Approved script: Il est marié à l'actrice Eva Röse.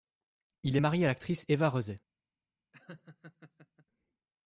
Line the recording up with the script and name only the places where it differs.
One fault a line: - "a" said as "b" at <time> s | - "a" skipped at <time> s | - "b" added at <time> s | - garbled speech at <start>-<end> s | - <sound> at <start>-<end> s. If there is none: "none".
- laugh at 2.7-3.9 s